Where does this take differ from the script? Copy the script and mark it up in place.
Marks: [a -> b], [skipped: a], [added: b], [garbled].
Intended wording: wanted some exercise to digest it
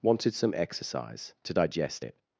wanted some exercise to digest it